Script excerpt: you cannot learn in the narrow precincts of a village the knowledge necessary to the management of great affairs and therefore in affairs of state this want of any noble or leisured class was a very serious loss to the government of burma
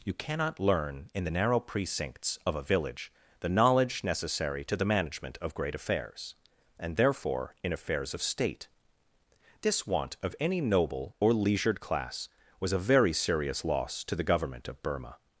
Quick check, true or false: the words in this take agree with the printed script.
true